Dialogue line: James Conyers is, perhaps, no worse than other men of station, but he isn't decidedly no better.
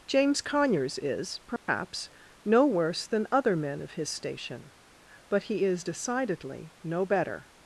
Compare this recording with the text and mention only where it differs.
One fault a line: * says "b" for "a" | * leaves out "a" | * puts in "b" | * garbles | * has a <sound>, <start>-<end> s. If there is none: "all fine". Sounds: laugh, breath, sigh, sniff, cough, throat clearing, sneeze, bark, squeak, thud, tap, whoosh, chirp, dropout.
* has a dropout, 1.6-1.7 s
* puts in "his"
* says "is" for "isn't"